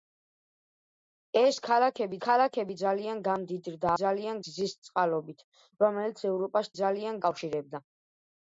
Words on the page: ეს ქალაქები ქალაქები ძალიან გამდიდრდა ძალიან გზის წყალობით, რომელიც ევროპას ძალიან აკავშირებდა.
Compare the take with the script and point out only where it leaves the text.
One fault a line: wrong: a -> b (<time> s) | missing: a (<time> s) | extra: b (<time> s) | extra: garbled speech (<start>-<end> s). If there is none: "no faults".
no faults